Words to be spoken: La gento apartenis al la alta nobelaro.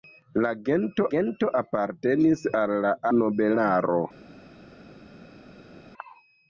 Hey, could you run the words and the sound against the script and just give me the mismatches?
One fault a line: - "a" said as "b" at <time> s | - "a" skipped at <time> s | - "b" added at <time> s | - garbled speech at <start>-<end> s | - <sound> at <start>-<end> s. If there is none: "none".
- "gento" added at 1.1 s
- "alta" skipped at 2.9 s